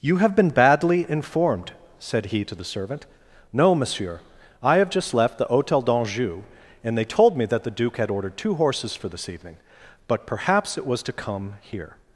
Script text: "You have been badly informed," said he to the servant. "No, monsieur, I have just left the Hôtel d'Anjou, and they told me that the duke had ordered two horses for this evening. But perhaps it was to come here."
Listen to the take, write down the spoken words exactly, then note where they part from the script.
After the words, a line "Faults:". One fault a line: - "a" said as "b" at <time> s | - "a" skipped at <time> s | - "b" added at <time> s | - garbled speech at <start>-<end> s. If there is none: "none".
"You have been badly informed," said he to the servant. "No, monsieur, I have just left the Hôtel d'Anjou, and they told me that the duke had ordered two horses for this evening. But perhaps it was to come here."
Faults:
none